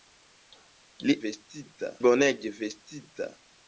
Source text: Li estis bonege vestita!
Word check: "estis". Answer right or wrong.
wrong